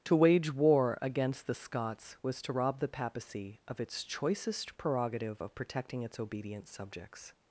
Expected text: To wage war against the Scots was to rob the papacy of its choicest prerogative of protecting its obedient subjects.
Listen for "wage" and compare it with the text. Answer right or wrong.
right